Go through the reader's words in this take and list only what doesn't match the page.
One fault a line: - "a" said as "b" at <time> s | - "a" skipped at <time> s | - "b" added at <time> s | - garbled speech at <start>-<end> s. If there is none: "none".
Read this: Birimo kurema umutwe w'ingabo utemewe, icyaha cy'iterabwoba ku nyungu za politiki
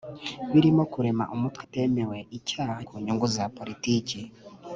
- "w'ingabo" skipped at 1.6 s
- "cy'iterabwoba" skipped at 2.8 s